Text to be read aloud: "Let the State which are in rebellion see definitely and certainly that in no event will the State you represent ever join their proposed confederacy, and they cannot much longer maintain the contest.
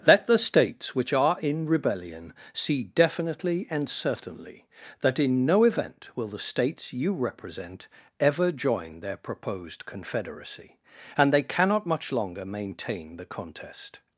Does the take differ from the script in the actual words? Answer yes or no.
yes